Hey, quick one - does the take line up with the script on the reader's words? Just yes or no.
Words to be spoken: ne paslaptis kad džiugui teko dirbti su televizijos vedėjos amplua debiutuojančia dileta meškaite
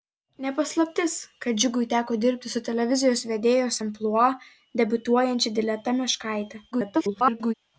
no